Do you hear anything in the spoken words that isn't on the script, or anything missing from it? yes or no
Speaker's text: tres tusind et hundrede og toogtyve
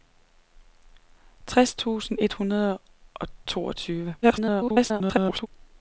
yes